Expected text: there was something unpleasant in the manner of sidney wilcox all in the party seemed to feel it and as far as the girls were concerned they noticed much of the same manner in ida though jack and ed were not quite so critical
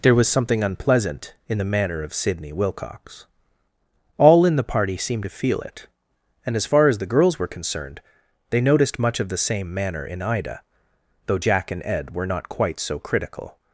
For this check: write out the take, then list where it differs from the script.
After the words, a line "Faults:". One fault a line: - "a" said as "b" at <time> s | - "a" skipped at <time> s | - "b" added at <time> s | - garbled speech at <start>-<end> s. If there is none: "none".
there was something unpleasant in the manner of sidney wilcox all in the party seemed to feel it and as far as the girls were concerned they noticed much of the same manner in ida though jack and ed were not quite so critical
Faults:
none